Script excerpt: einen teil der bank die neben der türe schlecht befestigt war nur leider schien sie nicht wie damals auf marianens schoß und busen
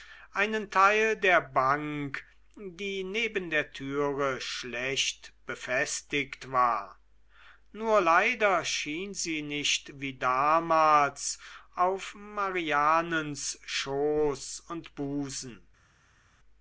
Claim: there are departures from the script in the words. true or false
false